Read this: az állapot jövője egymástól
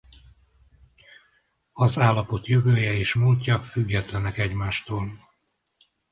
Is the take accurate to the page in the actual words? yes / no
no